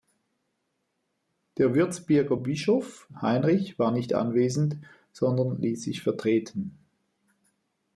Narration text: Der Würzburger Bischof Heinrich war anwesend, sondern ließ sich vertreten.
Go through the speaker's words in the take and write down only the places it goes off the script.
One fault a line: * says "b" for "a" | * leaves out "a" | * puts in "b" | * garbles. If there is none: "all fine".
* puts in "nicht"